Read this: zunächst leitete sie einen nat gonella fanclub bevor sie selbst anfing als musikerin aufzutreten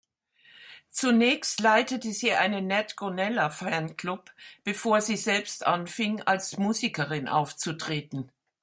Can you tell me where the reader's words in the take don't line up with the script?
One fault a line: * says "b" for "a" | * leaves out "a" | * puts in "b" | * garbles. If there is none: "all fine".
all fine